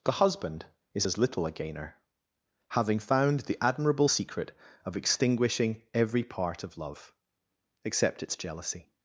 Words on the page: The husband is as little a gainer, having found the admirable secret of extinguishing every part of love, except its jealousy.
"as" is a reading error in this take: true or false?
false